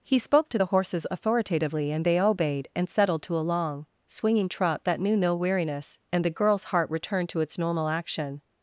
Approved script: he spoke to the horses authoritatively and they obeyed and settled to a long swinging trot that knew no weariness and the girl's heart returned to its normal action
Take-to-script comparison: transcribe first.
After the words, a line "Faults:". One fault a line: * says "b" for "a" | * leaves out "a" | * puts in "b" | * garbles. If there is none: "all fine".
he spoke to the horses authoritatively and they obeyed and settled to a long swinging trot that knew no weariness and the girl's heart returned to its normal action
Faults:
all fine